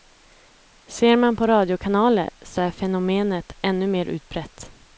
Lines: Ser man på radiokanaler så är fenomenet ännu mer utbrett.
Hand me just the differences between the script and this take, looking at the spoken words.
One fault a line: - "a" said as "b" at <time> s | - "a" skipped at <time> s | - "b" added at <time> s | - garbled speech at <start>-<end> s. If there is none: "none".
none